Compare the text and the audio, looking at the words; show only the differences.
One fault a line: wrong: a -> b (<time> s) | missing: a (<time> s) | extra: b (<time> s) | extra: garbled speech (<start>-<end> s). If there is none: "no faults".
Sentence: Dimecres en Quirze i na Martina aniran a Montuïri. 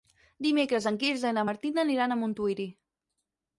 no faults